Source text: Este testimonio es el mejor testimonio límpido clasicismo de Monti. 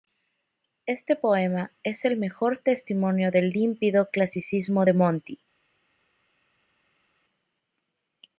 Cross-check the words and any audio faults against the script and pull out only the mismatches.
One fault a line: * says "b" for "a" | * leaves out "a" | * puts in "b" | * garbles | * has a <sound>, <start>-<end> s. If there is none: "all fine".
* says "poema" for "testimonio"
* puts in "del"